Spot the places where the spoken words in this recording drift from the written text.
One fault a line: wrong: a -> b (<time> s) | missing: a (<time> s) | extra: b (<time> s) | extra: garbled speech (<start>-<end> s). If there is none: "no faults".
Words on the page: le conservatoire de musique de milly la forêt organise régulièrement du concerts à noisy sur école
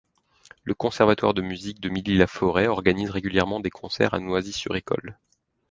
wrong: du -> des (3.6 s)